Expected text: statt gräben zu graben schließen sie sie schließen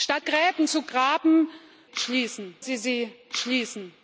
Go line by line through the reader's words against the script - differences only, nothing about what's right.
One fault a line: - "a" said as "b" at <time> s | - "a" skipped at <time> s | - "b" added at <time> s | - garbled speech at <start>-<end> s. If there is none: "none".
none